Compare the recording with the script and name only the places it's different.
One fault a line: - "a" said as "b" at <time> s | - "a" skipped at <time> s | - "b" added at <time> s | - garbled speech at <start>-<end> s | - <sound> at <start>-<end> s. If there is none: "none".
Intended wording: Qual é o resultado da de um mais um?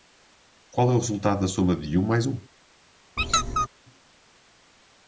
- "soma" added at 1.5 s
- squeak at 3.2-3.7 s